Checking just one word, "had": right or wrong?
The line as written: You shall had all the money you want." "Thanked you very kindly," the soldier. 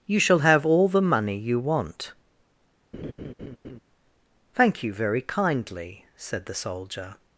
wrong